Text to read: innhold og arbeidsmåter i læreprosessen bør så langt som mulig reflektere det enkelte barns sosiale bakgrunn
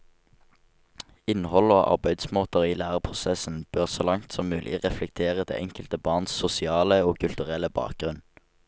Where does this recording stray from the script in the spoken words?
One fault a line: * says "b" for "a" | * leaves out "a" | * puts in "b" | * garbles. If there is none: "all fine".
* puts in "og kulturelle"